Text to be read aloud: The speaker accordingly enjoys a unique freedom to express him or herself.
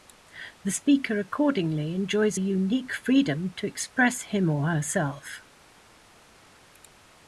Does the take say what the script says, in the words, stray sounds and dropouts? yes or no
yes